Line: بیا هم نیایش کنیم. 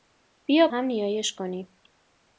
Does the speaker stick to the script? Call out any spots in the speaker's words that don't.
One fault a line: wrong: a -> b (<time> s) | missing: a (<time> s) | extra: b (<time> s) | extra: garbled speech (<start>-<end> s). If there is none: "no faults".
no faults